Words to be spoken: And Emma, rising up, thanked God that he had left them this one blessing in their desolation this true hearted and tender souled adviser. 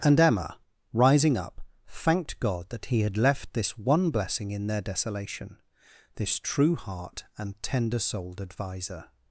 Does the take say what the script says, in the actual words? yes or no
no